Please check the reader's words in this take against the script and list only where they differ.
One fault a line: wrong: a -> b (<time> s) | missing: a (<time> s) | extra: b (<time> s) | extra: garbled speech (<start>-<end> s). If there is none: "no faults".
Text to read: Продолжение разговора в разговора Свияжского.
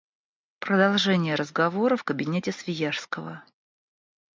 wrong: разговора -> кабинете (2.0 s)